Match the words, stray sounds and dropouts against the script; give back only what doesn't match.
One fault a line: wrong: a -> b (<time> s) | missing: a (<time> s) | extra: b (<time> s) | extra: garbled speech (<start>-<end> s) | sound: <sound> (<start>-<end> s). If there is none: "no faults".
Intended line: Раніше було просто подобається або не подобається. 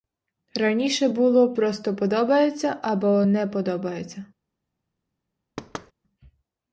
sound: thud (5.6-5.9 s)